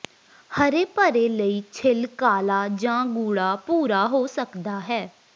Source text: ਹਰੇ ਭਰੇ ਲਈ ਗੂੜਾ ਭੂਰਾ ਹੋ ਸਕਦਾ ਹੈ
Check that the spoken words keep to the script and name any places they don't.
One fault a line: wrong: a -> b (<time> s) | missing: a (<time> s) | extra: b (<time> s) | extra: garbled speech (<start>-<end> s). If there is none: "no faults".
extra: ਛਿੱਲ ਕਾਲਾ ਜਾਂ (1.7 s)